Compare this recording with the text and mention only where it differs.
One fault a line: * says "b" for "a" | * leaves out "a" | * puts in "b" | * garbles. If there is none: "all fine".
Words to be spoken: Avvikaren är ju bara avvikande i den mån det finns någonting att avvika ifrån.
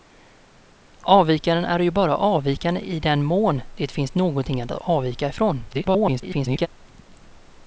* garbles